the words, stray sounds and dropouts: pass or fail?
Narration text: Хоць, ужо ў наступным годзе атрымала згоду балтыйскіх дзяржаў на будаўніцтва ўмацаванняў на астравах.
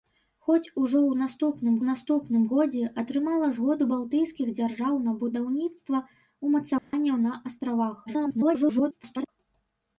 fail